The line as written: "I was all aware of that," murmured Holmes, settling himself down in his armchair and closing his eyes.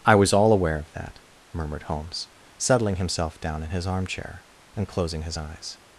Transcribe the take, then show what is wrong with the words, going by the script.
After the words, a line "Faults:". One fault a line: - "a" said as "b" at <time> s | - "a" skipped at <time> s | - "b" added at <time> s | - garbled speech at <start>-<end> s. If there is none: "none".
"I was all aware of that," murmured Holmes, settling himself down in his armchair and closing his eyes.
Faults:
none